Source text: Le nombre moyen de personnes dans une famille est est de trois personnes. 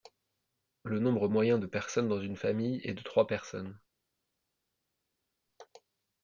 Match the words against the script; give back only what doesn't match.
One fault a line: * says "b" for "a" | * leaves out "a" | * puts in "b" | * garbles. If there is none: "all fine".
* leaves out "est"